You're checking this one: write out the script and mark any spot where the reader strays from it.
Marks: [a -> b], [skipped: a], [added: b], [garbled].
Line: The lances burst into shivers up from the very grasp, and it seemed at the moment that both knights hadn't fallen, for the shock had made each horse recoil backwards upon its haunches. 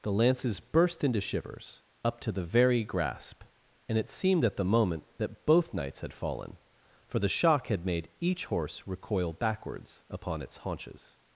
The lances burst into shivers up [from -> to] the very grasp, and it seemed at the moment that both knights [hadn't -> had] fallen, for the shock had made each horse recoil backwards upon its haunches.